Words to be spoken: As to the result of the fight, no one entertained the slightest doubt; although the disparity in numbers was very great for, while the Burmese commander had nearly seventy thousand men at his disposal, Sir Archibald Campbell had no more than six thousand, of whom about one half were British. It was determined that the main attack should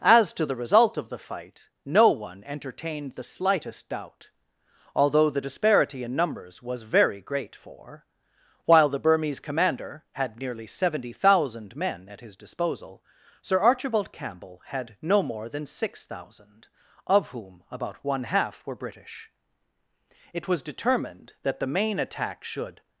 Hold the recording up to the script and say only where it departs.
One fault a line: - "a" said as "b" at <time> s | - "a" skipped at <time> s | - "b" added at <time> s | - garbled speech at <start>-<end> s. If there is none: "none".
none